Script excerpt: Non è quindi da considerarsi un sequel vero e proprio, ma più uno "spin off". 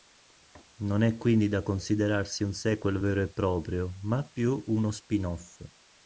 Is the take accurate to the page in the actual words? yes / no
yes